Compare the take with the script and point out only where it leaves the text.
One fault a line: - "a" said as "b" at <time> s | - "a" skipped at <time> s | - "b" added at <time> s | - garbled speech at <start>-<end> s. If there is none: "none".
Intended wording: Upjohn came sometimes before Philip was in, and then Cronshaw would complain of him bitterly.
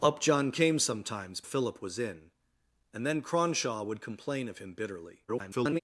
- "before" skipped at 1.4 s
- garbled speech at 5.3-5.8 s